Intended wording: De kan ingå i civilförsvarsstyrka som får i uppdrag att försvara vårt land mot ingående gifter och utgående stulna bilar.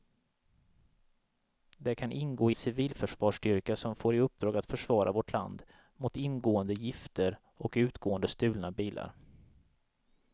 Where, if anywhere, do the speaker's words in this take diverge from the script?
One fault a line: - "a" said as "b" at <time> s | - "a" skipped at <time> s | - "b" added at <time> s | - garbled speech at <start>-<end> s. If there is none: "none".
none